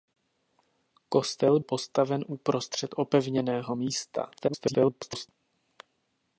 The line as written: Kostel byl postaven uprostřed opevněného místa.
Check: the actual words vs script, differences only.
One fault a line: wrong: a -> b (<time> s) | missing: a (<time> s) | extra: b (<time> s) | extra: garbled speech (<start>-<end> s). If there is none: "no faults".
missing: byl (1.6 s)
extra: garbled speech (4.4-5.3 s)